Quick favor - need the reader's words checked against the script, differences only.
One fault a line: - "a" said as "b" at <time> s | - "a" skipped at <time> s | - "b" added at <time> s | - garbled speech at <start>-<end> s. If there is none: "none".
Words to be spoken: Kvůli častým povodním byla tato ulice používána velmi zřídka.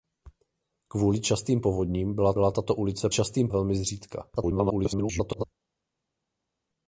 - "byla" added at 2.3 s
- "používána" said as "častým" at 3.1 s
- garbled speech at 4.4-5.4 s